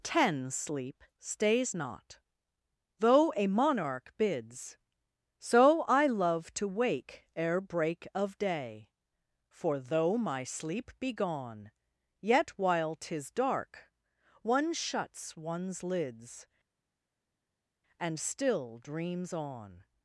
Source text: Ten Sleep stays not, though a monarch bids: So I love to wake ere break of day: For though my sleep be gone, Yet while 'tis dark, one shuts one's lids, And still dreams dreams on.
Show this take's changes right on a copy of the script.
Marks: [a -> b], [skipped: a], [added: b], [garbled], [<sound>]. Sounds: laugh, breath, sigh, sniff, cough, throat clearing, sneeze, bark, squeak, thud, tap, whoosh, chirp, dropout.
Ten Sleep stays not, though a monarch bids: So I love to wake ere break of day: For though my sleep be gone, Yet while 'tis dark, one shuts one's lids, And still dreams [skipped: dreams] on.